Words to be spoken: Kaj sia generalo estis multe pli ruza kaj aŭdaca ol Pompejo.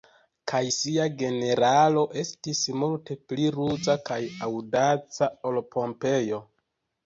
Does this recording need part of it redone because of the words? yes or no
no